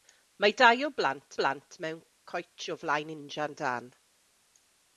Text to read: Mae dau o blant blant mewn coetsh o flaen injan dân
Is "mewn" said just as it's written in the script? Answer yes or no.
yes